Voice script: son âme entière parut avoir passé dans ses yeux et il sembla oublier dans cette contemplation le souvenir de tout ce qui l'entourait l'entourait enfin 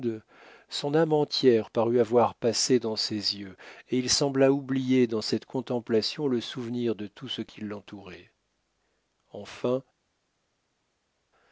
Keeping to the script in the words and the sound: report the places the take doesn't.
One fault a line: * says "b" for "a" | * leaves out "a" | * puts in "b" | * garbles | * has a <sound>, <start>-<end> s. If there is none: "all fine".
* leaves out "l'entourait"